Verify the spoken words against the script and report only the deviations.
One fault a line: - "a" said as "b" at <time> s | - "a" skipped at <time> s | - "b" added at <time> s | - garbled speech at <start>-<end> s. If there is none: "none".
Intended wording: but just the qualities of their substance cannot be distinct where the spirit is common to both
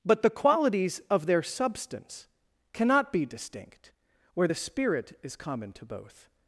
- "just" skipped at 0.2 s